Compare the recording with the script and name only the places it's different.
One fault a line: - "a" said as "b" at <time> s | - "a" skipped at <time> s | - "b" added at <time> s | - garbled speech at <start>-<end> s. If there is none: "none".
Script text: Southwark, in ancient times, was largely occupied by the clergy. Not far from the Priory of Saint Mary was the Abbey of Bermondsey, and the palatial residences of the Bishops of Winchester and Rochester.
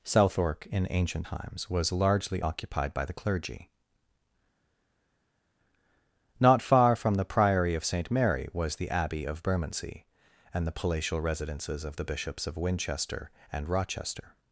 none